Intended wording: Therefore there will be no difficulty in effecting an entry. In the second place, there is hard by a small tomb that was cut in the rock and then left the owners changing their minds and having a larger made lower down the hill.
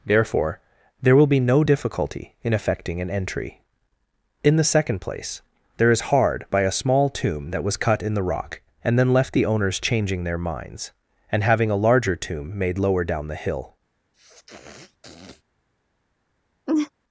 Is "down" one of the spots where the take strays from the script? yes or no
no